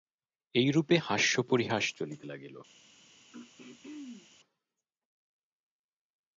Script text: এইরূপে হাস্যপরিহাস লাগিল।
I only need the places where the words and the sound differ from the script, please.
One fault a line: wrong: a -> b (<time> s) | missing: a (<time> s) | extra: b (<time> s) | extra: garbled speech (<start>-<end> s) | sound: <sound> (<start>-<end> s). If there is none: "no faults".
extra: চলিতে (1.9 s)
sound: throat clearing (3.3-4.3 s)